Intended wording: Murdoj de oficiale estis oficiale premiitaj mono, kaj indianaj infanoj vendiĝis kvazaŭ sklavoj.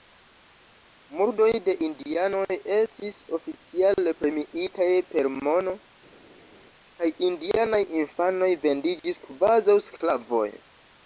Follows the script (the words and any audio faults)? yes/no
no